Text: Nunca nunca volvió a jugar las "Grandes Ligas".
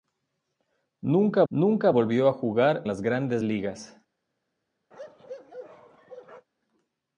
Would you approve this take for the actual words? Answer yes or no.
yes